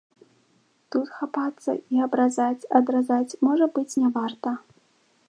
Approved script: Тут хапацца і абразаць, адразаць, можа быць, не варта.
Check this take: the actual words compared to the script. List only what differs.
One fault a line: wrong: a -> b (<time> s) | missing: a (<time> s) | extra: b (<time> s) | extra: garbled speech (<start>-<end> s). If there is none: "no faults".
no faults